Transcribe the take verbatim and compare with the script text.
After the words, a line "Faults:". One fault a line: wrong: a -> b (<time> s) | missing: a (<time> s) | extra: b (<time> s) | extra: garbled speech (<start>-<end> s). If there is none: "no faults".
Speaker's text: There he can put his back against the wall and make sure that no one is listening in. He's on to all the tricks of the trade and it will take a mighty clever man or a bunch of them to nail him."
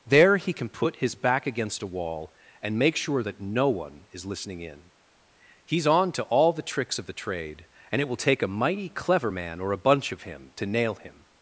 There he can put his back against a wall and make sure that no one is listening in. He's on to all the tricks of the trade and it will take a mighty clever man or a bunch of him to nail him."
Faults:
wrong: the -> a (1.8 s)
wrong: them -> him (10.2 s)